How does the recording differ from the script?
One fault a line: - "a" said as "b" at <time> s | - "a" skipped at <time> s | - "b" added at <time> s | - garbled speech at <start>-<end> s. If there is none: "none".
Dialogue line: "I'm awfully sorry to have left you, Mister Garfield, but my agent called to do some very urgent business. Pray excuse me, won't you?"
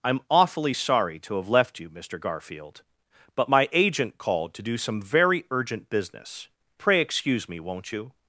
none